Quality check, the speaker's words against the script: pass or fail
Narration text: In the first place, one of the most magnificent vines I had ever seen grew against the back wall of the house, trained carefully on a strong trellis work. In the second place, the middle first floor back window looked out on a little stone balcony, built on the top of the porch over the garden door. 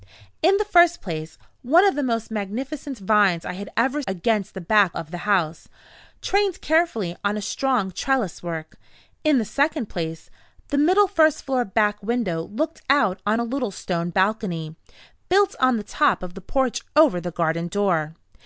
fail